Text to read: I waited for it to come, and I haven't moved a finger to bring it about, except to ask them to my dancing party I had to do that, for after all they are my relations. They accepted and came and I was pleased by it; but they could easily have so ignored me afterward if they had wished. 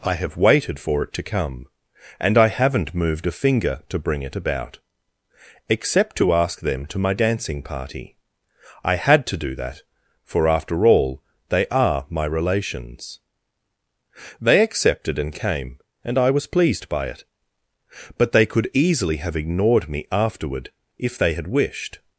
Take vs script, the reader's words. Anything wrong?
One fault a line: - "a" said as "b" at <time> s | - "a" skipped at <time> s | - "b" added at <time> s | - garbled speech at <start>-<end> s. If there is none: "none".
- "have" added at 0.1 s
- "so" skipped at 19.4 s